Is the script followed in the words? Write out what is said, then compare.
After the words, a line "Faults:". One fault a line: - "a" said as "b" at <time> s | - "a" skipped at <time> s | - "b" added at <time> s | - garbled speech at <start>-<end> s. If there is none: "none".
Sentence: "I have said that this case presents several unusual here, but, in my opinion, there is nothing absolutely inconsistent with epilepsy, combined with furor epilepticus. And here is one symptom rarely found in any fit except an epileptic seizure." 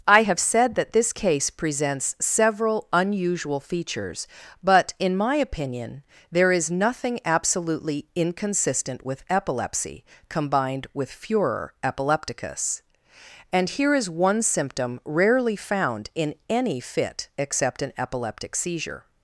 "I have said that this case presents several unusual features, but, in my opinion, there is nothing absolutely inconsistent with epilepsy, combined with furor epilepticus. And here is one symptom rarely found in any fit except an epileptic seizure."
Faults:
- "here" said as "features" at 3.6 s